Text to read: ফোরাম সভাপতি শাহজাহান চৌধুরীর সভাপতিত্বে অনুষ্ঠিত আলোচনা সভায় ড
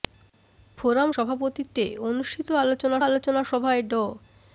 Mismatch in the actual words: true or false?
true